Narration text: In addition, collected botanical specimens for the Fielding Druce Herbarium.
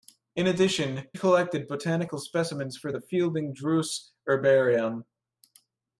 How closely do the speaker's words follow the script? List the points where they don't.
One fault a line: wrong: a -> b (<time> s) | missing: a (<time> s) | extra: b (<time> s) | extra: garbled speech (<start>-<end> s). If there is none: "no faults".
no faults